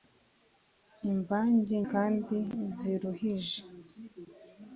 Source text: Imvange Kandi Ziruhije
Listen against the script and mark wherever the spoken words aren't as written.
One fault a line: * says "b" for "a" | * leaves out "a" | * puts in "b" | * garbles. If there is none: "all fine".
all fine